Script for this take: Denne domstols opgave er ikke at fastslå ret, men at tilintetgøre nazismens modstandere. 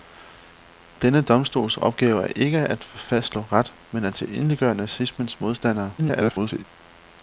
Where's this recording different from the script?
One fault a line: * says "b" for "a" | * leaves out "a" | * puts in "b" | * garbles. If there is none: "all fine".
* garbles